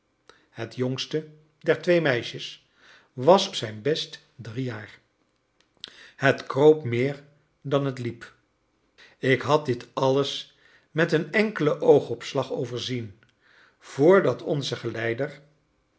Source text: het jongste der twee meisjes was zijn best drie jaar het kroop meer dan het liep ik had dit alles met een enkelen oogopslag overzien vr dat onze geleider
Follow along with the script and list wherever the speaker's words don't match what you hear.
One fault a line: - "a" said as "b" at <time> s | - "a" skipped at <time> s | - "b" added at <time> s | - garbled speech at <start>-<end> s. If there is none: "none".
none